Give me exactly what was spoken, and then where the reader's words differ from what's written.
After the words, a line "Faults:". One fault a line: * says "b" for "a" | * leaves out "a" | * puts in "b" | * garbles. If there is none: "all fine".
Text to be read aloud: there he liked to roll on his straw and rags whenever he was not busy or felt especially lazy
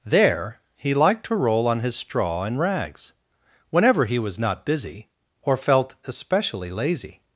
there he liked to roll on his straw and rags whenever he was not busy or felt especially lazy
Faults:
all fine